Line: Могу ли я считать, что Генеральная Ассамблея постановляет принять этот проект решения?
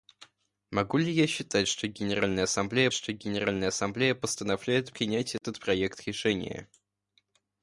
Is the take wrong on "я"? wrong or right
right